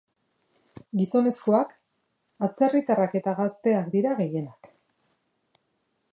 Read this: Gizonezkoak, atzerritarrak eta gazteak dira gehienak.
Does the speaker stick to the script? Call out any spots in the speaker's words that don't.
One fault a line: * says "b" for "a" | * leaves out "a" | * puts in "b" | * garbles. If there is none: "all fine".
all fine